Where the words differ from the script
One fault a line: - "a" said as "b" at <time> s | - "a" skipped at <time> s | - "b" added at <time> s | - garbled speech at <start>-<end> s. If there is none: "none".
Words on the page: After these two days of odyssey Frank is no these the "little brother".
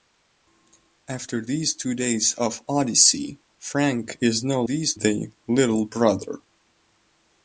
none